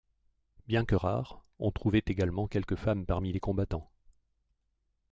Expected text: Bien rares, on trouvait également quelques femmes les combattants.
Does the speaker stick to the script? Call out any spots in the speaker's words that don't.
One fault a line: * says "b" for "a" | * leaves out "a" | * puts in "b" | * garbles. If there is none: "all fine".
* puts in "que"
* puts in "parmi"